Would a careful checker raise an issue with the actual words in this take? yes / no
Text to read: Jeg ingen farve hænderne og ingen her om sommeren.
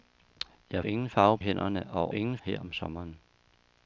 no